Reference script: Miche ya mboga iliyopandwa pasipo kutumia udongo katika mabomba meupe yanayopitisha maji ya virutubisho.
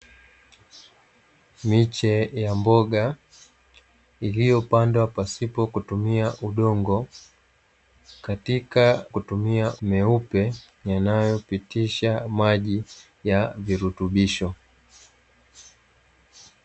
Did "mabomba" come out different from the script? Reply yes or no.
yes